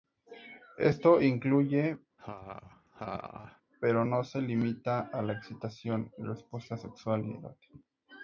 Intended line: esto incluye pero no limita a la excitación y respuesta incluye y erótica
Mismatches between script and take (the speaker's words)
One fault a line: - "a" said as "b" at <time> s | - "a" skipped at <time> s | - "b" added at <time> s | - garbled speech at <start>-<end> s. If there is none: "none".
- "se" added at 4.2 s
- "incluye" said as "sexual" at 6.8 s